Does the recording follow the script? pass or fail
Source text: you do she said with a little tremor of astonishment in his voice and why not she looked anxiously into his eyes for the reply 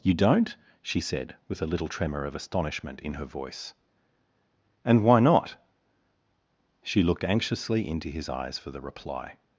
fail